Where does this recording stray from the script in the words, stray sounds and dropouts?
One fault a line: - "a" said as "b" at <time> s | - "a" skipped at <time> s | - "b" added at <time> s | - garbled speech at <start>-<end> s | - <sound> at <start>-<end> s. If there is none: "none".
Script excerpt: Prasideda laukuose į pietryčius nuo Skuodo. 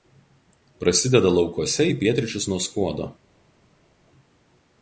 none